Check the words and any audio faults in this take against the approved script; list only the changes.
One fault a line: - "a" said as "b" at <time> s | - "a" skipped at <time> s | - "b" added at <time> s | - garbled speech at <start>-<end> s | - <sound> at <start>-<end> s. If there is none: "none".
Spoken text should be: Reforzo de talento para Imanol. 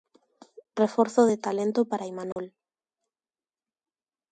- dropout at 2.3-2.4 s